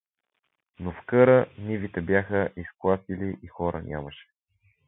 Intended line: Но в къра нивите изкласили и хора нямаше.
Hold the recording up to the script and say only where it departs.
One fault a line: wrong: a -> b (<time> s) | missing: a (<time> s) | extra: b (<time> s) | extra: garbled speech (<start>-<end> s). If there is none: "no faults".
extra: бяха (2.0 s)